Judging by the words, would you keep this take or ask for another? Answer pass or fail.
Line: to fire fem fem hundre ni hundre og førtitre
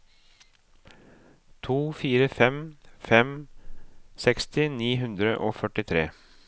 fail